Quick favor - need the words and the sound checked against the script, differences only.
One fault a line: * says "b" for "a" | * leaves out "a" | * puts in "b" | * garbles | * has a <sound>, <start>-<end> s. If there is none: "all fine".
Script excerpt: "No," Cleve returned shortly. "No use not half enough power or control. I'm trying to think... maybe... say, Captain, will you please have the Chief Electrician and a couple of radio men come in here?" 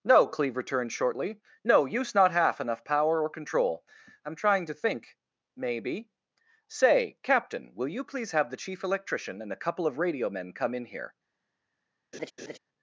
* has a laugh, 12.1-12.6 s